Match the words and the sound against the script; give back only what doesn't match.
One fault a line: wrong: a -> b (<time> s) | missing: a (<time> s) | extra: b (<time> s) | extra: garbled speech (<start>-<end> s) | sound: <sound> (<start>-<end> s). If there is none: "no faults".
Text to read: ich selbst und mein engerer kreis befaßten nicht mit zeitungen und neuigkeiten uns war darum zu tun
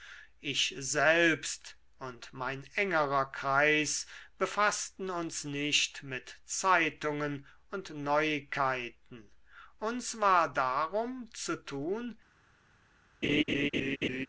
extra: uns (5.1 s)
sound: laugh (13.2-14.3 s)